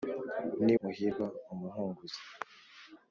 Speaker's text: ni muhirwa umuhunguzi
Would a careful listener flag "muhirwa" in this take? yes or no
no